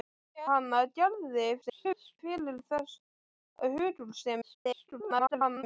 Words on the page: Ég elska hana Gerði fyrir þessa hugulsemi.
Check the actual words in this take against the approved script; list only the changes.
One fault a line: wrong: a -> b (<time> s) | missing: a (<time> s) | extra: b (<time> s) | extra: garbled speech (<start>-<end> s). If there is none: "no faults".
missing: elska (0.5 s)
extra: garbled speech (1.6-2.2 s)
extra: garbled speech (4.4-5.6 s)